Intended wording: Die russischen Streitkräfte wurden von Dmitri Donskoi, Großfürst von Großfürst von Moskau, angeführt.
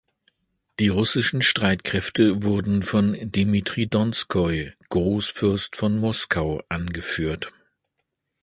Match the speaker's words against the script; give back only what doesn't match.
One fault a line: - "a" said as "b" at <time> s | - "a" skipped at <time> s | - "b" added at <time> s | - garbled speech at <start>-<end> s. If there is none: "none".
- "Großfürst von" skipped at 6.0 s